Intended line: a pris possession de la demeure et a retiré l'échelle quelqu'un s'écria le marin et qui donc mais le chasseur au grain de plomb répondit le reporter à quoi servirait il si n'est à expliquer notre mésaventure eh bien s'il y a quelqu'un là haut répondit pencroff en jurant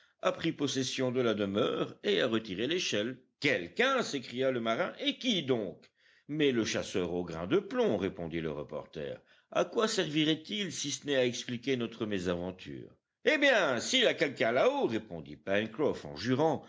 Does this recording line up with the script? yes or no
no